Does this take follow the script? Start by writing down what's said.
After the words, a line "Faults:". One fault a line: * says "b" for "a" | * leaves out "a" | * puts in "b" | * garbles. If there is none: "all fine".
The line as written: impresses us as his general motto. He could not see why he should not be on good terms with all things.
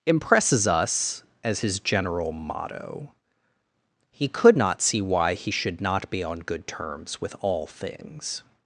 impresses us as his general motto. He could not see why he should not be on good terms with all things.
Faults:
all fine